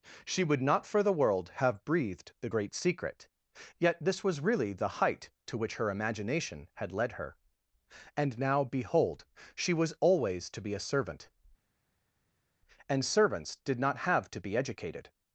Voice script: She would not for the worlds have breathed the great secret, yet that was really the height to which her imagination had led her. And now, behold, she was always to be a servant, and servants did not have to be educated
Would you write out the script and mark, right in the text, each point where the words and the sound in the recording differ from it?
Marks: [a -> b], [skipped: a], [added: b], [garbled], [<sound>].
She would not for the [worlds -> world] have breathed the great secret, yet [that -> this] was really the height to which her imagination had led her. And now, behold, she was always to be a servant, and servants did not have to be educated